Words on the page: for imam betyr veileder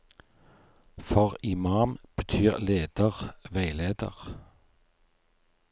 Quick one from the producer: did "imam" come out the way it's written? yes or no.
yes